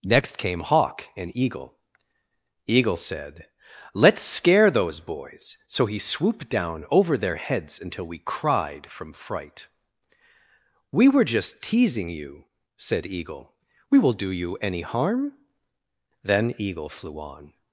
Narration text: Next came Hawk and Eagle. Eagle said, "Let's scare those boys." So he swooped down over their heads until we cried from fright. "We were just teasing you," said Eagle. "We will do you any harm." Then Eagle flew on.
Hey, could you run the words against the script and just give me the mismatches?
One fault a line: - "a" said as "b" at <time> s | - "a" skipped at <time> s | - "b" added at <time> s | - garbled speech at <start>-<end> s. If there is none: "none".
none